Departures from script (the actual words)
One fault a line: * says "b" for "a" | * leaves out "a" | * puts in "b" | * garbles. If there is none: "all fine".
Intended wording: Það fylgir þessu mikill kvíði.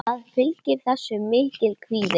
all fine